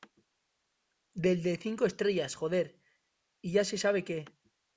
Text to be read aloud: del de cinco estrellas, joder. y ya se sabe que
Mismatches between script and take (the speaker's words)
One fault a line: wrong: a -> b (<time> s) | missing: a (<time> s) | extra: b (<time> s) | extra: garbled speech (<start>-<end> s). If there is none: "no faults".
no faults